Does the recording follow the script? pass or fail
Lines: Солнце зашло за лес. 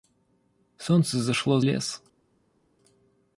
fail